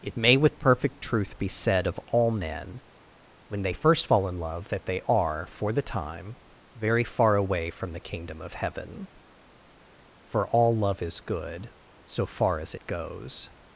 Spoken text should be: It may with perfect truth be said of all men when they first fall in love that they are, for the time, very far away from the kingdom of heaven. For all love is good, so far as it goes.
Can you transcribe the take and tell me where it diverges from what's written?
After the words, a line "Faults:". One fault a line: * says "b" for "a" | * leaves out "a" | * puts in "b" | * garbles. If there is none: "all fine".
It may with perfect truth be said of all men when they first fall in love that they are, for the time, very far away from the kingdom of heaven. For all love is good, so far as it goes.
Faults:
all fine